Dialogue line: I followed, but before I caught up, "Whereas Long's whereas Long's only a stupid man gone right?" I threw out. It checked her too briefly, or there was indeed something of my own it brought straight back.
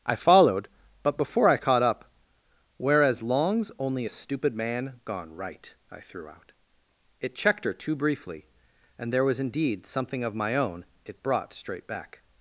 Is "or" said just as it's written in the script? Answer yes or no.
no